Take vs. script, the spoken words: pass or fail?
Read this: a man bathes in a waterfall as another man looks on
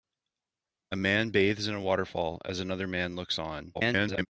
fail